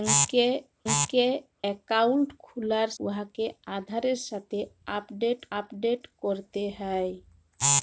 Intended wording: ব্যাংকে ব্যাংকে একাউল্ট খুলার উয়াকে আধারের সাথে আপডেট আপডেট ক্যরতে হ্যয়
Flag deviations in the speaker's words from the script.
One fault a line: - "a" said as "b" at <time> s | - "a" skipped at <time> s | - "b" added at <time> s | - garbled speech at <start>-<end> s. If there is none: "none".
none